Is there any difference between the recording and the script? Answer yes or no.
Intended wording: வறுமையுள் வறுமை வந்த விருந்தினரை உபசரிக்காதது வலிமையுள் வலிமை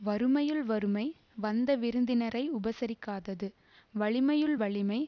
no